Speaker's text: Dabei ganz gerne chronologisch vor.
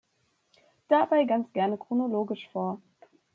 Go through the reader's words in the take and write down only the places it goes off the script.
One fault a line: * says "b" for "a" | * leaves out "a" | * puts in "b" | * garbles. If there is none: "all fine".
all fine